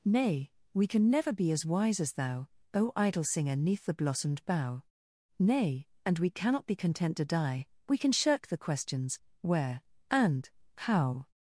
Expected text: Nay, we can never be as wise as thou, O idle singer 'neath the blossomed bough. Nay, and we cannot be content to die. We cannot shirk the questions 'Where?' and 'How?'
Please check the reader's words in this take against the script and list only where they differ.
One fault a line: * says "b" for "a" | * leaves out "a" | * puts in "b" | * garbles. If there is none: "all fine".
* says "can" for "cannot"